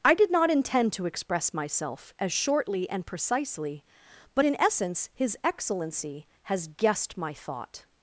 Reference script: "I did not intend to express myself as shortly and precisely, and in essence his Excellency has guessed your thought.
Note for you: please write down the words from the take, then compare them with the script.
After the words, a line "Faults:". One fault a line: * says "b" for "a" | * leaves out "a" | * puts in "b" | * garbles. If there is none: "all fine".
"I did not intend to express myself as shortly and precisely, but in essence his Excellency has guessed my thought.
Faults:
* says "but" for "and"
* says "my" for "your"